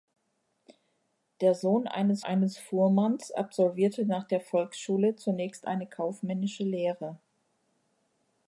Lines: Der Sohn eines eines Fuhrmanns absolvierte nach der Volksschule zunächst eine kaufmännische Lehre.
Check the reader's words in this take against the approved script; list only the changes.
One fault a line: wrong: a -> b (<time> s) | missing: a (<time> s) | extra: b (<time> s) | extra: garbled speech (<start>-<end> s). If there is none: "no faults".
no faults